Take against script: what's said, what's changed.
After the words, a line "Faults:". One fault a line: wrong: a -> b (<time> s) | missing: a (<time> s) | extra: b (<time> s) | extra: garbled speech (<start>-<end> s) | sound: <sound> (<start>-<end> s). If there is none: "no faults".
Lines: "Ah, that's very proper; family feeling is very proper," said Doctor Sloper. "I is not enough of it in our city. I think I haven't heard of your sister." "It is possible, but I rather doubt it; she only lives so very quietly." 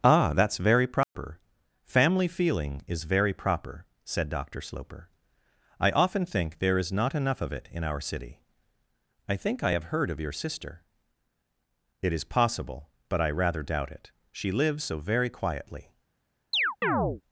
"Ah, that's very proper; family feeling is very proper," said Doctor Sloper. "I often think there is not enough of it in our city. I think I have heard of your sister." "It is possible, but I rather doubt it; she lives so very quietly."
Faults:
sound: dropout (1.0-1.2 s)
extra: often think there (5.9 s)
wrong: haven't -> have (9.7 s)
missing: only (14.5 s)
sound: chirp (16.5-17.2 s)